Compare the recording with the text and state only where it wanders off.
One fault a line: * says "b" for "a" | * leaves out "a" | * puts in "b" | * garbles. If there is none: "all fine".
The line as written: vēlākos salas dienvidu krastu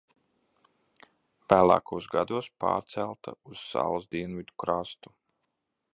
* puts in "gados pārcelta uz"